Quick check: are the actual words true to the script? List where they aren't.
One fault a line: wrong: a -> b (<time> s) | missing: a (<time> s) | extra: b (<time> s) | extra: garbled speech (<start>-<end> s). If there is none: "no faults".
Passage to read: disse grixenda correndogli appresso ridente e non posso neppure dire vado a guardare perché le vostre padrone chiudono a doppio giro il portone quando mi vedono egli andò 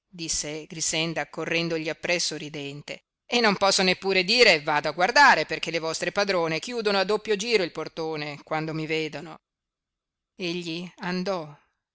no faults